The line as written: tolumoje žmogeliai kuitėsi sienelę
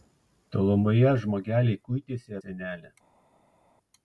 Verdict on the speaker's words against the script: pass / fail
pass